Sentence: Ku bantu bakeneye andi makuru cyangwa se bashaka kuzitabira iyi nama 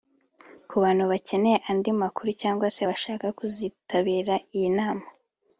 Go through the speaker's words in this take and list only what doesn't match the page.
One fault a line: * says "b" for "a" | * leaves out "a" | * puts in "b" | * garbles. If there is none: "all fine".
all fine